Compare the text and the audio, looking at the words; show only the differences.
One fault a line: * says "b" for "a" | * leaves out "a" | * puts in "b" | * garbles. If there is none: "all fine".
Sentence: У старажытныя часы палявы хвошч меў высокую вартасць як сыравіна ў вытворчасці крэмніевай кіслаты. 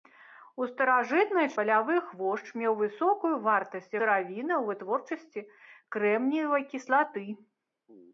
* leaves out "часы"
* leaves out "як"